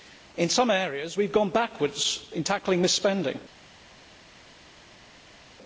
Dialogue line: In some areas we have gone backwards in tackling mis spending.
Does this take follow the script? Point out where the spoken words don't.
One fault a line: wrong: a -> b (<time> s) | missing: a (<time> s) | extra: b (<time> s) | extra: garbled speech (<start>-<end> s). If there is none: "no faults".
no faults